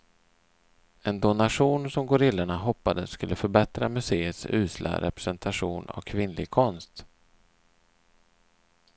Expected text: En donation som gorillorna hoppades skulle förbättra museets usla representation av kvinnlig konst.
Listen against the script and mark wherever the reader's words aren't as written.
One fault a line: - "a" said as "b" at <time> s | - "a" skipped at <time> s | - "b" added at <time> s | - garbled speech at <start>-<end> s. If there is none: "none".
none